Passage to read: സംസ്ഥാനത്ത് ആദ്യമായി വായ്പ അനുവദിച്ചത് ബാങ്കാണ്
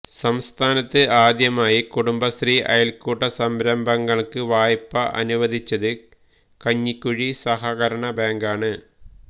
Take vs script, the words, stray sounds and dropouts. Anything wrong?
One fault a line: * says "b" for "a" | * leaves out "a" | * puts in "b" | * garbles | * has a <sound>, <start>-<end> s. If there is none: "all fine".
* puts in "കുടുംബശ്രീ അയല്ക്കൂട്ട സംരംഭങ്ങള്ക്ക്"
* puts in "കഞ്ഞിക്കുഴി സഹകരണ"